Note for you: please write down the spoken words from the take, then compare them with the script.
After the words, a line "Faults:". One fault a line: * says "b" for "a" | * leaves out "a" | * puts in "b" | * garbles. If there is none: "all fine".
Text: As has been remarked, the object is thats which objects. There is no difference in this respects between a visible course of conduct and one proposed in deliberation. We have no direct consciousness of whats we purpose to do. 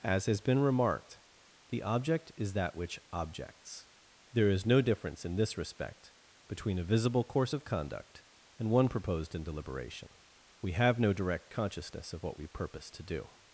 As has been remarked, the object is that which objects. There is no difference in this respect between a visible course of conduct and one proposed in deliberation. We have no direct consciousness of what we purpose to do.
Faults:
* says "that" for "thats"
* says "respect" for "respects"
* says "what" for "whats"